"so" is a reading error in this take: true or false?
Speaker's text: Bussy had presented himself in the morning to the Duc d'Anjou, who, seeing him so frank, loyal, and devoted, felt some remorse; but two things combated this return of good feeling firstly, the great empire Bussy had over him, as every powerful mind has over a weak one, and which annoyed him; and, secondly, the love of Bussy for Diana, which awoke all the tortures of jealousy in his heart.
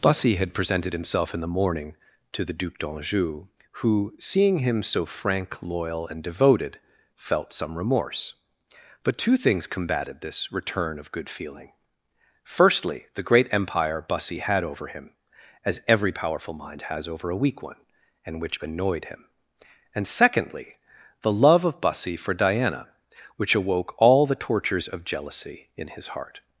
false